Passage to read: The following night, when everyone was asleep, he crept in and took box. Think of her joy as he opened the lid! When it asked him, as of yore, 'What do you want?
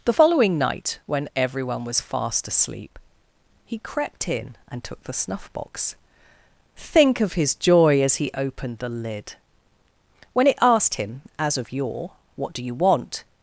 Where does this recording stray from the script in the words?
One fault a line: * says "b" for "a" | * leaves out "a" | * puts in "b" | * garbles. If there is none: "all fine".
* puts in "fast"
* puts in "the snuff"
* says "his" for "her"